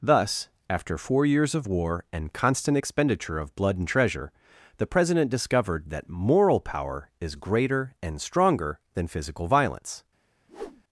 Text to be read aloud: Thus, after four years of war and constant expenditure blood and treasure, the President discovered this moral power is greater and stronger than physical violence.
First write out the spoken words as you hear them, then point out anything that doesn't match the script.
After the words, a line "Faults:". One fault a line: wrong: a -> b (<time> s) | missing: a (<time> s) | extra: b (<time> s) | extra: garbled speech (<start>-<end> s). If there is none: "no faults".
Thus, after four years of war and constant expenditure of blood and treasure, the President discovered that moral power is greater and stronger than physical violence.
Faults:
extra: of (3.4 s)
wrong: this -> that (5.9 s)